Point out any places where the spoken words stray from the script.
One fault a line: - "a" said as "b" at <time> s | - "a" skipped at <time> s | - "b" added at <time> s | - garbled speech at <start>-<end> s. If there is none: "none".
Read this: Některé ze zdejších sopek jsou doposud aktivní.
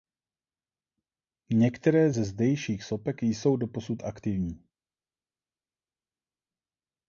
none